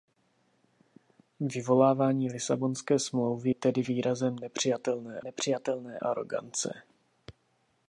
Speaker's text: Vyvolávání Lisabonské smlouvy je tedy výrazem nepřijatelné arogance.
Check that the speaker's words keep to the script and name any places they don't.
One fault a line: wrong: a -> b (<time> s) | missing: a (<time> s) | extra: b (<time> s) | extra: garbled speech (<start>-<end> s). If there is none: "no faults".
missing: je (3.5 s)
extra: nepřijatelné (5.2 s)